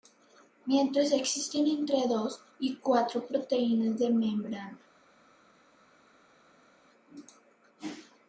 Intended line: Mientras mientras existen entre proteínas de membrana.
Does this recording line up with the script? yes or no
no